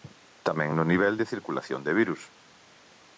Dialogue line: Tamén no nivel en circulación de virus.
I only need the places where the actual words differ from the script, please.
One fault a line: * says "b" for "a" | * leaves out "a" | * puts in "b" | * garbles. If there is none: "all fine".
* says "de" for "en"